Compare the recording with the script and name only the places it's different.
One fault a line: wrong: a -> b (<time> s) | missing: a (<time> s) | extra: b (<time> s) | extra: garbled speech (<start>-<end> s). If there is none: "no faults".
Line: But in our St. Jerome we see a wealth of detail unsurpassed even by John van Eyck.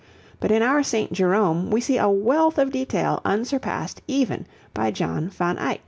no faults